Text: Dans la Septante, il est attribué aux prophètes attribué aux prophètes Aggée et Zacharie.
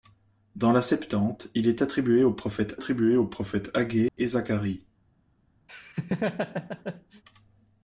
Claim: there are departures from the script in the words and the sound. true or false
true